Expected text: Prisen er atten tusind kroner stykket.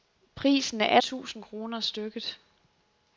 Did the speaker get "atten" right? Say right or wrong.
wrong